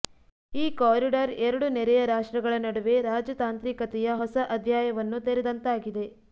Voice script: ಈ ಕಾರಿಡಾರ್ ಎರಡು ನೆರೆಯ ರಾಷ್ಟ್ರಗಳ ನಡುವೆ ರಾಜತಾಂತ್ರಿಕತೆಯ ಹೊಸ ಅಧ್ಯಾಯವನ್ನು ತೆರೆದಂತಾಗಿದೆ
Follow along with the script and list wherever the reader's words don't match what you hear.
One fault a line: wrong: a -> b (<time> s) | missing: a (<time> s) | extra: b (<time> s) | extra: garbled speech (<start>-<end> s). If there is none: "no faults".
no faults